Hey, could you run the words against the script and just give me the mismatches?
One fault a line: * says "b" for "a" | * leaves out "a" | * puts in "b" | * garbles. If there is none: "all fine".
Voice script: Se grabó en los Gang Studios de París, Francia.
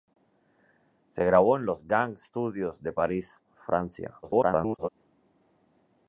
* garbles